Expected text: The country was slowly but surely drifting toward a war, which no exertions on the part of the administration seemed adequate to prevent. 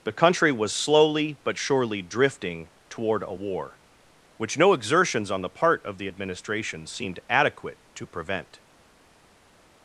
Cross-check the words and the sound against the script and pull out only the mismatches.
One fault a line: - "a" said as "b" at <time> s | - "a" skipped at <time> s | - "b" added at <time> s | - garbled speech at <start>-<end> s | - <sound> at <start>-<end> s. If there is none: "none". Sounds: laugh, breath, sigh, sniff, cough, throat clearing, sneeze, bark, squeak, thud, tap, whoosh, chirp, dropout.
none